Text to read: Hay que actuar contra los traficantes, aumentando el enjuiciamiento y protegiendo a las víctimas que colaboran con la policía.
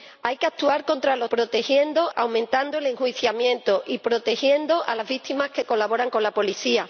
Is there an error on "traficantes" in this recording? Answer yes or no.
yes